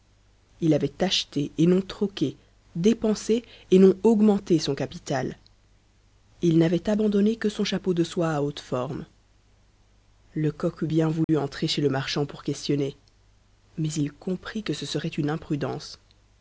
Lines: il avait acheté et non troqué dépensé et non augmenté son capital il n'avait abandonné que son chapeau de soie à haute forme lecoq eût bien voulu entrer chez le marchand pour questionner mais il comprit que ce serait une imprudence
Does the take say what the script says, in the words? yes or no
yes